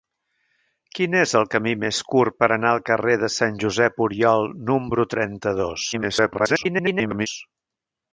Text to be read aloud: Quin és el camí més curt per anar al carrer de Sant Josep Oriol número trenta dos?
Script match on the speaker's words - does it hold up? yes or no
no